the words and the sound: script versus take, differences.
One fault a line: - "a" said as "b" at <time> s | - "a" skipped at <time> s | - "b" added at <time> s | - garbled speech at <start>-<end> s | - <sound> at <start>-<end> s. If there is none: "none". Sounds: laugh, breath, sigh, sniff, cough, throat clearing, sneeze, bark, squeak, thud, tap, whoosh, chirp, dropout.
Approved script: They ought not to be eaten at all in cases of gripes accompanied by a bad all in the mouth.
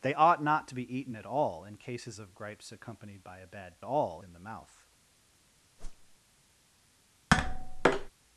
- whoosh at 5.8-6.2 s
- tap at 7.3-8.1 s